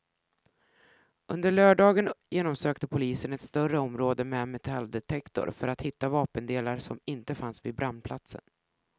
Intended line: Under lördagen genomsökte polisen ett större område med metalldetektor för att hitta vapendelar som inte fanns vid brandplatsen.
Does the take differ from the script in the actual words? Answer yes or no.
no